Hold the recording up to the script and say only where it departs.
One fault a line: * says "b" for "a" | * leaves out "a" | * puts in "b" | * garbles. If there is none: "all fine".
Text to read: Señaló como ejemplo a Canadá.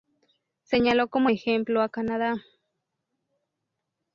all fine